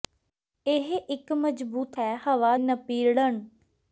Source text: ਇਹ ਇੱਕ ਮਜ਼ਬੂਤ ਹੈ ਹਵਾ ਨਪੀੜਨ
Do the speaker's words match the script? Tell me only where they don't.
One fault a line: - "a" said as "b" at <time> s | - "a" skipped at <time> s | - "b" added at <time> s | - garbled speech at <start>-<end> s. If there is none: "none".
none